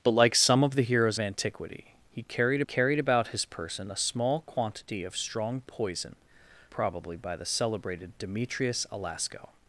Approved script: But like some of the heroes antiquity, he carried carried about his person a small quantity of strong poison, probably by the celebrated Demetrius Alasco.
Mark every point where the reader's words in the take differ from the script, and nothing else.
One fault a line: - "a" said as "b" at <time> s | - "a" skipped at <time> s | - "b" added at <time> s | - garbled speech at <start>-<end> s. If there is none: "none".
none